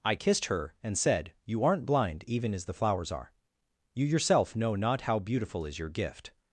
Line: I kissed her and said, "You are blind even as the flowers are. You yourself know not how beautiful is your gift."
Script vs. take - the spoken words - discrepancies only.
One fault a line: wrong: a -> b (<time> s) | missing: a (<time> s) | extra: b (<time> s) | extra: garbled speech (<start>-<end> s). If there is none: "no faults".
wrong: are -> aren't (1.6 s)